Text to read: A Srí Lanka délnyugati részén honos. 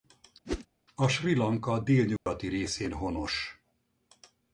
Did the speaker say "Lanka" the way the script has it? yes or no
yes